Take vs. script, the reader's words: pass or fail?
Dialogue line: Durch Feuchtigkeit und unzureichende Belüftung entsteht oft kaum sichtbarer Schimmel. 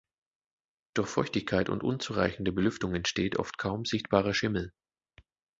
pass